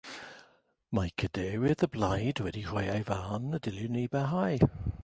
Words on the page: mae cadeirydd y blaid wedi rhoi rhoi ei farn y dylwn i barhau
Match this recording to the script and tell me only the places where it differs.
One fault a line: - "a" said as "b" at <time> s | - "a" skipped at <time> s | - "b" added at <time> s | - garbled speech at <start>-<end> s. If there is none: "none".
- "rhoi" skipped at 2.9 s